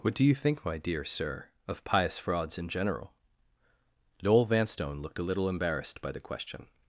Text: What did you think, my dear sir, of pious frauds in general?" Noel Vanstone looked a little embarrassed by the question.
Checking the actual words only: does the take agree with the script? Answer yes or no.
no